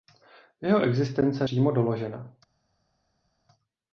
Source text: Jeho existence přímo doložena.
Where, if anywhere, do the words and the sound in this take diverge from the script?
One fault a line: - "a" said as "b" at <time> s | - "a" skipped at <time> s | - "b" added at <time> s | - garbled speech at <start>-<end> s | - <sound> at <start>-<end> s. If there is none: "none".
none